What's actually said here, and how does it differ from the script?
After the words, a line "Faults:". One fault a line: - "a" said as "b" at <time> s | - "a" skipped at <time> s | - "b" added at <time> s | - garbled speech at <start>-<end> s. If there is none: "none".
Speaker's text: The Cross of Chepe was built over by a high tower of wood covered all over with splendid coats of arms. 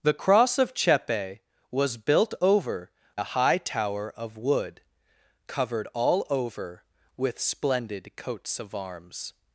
The Cross of Chepe was built over a high tower of wood covered all over with splendid coats of arms.
Faults:
- "by" skipped at 2.9 s